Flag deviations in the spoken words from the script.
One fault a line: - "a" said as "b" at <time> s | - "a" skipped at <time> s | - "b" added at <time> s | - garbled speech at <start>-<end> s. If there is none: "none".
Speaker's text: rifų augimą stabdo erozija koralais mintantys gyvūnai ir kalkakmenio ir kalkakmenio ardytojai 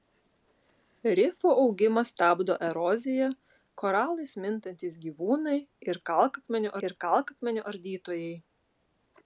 none